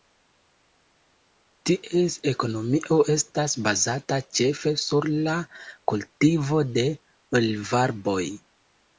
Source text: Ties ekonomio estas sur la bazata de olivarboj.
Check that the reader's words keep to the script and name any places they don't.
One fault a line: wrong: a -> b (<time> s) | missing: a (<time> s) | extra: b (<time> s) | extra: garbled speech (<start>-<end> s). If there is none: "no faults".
extra: bazata ĉefe (3.7 s)
wrong: bazata -> kultivo (5.9 s)